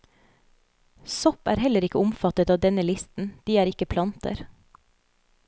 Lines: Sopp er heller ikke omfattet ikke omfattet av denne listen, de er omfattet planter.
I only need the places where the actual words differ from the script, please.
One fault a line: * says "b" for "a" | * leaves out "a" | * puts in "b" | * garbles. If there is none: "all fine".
* leaves out "ikke omfattet"
* says "ikke" for "omfattet"